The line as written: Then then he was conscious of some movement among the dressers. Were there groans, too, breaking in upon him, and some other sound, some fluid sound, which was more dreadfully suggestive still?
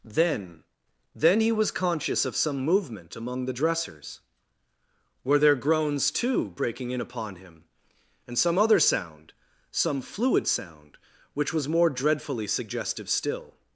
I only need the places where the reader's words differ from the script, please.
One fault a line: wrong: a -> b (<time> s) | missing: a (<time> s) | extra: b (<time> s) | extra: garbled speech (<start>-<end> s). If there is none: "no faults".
no faults